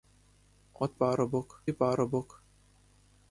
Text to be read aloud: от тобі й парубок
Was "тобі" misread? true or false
true